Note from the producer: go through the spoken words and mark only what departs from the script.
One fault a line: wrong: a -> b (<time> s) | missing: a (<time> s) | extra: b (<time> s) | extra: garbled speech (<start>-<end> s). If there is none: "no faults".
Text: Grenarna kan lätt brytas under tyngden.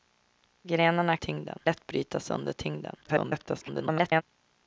wrong: kan -> tyngden (1.1 s)
extra: garbled speech (3.0-4.2 s)